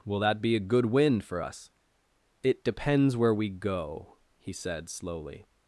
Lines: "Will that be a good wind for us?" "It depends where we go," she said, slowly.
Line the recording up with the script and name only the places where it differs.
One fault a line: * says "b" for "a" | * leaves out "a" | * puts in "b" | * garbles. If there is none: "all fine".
* says "he" for "she"